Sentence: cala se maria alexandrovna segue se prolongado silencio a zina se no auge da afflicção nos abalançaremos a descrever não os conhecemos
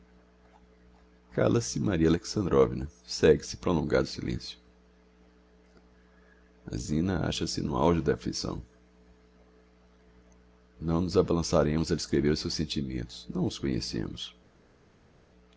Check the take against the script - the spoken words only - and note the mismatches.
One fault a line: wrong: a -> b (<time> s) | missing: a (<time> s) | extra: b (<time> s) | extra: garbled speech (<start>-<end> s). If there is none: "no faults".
extra: acha (7.3 s)
extra: não (10.8 s)
extra: os seus sentimentos (12.3 s)